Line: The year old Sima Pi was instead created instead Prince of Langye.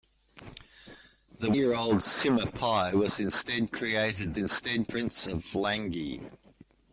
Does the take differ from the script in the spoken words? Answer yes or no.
no